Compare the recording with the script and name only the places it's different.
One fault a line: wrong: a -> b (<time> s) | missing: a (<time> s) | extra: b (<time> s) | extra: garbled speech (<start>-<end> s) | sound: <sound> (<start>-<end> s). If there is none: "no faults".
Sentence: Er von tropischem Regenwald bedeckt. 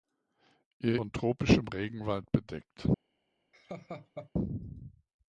sound: laugh (3.5-4.3 s)